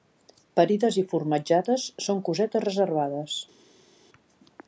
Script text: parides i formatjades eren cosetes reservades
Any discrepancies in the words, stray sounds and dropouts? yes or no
yes